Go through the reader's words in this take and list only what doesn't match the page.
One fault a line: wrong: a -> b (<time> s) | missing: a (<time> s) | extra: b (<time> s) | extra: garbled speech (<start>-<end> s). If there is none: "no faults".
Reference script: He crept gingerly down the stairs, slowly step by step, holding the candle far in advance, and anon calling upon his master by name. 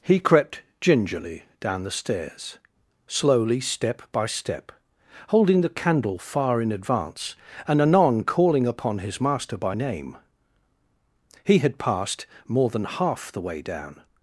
extra: He had passed more than half the way down (11.4 s)